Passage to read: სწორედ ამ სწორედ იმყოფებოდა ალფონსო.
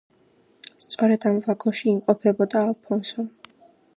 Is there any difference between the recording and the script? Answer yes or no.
yes